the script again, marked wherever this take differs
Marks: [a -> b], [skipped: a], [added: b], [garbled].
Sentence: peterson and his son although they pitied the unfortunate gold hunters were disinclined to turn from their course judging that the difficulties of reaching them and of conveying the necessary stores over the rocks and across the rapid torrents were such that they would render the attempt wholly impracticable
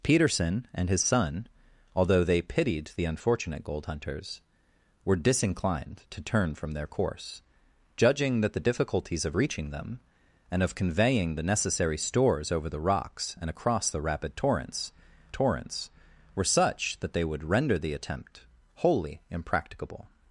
peterson and his son although they pitied the unfortunate gold hunters were disinclined to turn from their course judging that the difficulties of reaching them and of conveying the necessary stores over the rocks and across the rapid torrents [added: torrents] were such that they would render the attempt wholly impracticable